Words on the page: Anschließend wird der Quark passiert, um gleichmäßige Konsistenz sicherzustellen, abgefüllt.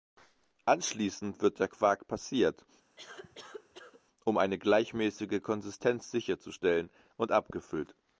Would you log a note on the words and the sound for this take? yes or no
yes